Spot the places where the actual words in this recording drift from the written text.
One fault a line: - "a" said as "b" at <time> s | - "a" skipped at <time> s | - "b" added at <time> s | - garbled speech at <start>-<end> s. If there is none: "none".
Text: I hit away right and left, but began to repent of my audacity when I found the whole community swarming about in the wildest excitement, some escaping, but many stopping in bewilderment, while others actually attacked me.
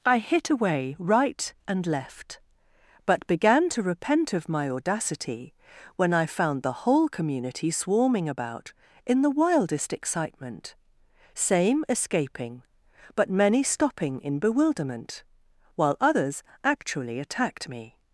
- "some" said as "same" at 11.3 s